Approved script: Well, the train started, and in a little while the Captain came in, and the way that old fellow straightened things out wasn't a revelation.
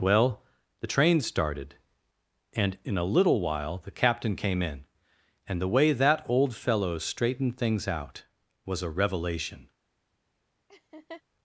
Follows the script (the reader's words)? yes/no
no